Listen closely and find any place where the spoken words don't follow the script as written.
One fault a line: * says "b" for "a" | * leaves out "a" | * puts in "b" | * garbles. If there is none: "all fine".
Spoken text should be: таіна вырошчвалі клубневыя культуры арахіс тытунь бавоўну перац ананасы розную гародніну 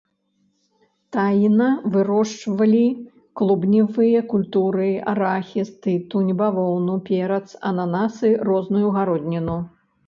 all fine